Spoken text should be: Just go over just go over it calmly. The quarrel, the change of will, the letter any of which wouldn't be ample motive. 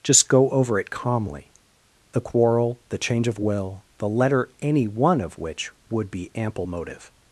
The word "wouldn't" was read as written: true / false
false